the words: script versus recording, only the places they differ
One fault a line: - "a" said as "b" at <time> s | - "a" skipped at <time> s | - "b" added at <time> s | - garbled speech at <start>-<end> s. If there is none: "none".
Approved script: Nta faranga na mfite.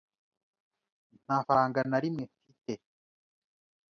- "rimwe" added at 2.0 s